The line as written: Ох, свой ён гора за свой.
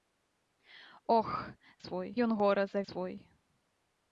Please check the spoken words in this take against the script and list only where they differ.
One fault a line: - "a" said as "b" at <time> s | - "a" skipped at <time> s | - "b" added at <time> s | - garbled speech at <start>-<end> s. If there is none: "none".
none